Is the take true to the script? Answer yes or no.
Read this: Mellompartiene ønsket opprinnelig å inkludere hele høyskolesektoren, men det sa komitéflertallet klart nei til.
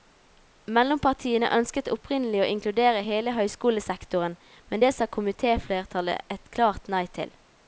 no